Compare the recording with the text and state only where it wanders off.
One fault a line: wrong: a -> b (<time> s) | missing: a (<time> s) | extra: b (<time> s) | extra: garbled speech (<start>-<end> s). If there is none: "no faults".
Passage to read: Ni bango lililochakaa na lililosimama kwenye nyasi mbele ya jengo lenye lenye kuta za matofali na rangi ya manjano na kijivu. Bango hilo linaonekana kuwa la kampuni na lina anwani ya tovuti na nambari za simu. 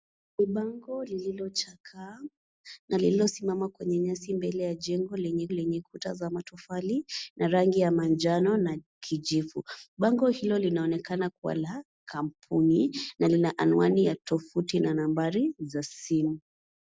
no faults